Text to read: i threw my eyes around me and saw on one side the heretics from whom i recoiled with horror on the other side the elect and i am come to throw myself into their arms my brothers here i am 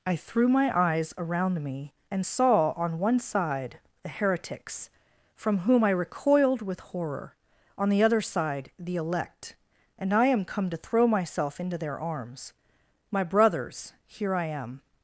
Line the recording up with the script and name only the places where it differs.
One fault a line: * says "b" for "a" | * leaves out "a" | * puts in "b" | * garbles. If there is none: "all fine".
all fine